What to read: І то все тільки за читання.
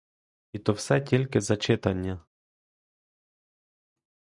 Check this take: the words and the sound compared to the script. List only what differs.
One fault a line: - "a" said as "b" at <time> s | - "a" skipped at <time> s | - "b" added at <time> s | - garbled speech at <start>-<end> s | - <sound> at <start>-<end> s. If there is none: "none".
none